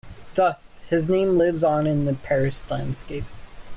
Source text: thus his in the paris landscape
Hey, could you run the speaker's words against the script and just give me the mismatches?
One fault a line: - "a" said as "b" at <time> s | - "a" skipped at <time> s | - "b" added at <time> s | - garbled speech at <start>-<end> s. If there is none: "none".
- "name lives on" added at 1.1 s